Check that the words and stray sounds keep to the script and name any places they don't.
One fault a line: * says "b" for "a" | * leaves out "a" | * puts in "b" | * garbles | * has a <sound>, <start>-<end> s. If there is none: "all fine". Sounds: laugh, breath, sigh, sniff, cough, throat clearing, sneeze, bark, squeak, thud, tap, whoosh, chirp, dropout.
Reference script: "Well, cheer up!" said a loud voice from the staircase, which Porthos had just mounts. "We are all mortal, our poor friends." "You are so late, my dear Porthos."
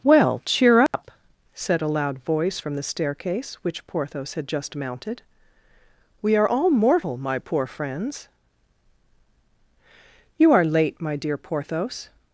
* has a dropout, 0.9-0.9 s
* says "mounted" for "mounts"
* says "my" for "our"
* leaves out "so"